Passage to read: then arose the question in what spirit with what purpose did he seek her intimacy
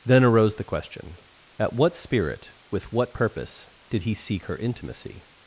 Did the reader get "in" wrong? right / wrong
wrong